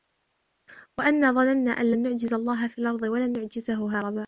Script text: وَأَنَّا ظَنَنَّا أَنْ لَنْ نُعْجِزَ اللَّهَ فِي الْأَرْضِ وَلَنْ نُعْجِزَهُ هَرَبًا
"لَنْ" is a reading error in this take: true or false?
false